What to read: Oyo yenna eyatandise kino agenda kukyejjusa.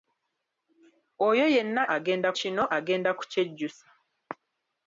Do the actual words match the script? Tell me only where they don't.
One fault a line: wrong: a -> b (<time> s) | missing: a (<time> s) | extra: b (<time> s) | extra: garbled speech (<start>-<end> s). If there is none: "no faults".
wrong: eyatandise -> agenda (2.0 s)